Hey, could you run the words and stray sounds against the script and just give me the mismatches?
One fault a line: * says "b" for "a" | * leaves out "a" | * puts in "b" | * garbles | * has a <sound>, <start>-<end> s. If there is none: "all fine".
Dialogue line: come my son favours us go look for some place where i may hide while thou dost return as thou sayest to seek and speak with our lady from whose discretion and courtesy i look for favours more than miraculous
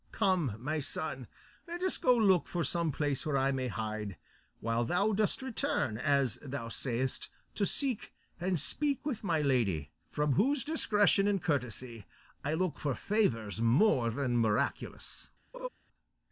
* says "let" for "favours"
* says "my" for "our"
* has a laugh, 15.5-15.7 s